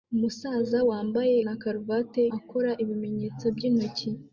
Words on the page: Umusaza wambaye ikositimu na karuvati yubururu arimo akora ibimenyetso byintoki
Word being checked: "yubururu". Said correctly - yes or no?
no